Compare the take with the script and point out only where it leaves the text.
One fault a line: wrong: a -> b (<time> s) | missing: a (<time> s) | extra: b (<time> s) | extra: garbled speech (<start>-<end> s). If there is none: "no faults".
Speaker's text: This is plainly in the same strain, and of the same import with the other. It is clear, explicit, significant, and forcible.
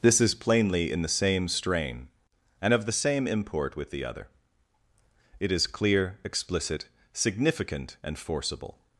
no faults